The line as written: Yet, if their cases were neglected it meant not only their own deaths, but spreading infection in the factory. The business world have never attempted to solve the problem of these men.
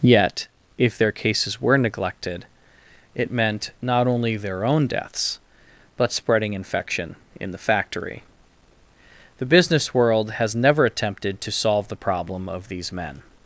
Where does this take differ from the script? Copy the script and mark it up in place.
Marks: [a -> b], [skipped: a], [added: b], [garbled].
Yet, if their cases were neglected it meant not only their own deaths, but spreading infection in the factory. The business world [have -> has] never attempted to solve the problem of these men.